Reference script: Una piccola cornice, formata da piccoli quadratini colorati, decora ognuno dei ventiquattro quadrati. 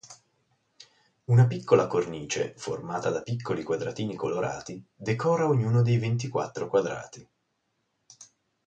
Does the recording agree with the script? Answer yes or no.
yes